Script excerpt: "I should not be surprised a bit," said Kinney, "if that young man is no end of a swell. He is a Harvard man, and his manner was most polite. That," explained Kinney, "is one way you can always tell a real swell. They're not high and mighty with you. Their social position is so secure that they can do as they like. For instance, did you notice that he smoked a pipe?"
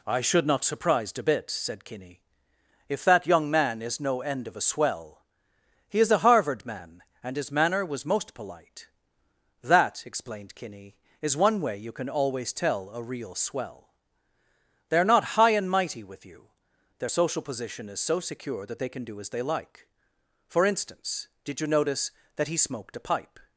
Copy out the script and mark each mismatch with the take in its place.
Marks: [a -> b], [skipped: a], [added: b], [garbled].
"I should not [skipped: be] surprised a bit," said Kinney, "if that young man is no end of a swell. He is a Harvard man, and his manner was most polite. That," explained Kinney, "is one way you can always tell a real swell. They're not high and mighty with you. Their social position is so secure that they can do as they like. For instance, did you notice that he smoked a pipe?"